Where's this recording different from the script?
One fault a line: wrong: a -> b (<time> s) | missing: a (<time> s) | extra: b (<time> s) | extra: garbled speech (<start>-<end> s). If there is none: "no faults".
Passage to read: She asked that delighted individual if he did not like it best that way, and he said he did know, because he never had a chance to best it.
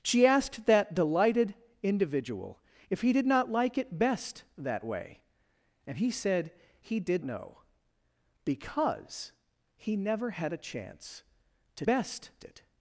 no faults